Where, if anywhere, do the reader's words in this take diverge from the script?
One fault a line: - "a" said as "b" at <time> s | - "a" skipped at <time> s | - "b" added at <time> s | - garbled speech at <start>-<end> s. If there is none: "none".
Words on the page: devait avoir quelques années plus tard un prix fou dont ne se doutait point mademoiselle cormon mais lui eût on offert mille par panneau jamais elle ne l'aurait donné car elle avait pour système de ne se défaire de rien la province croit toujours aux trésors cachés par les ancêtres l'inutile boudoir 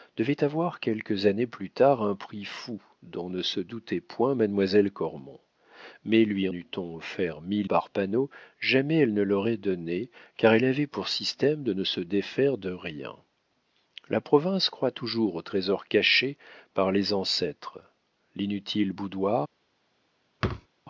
none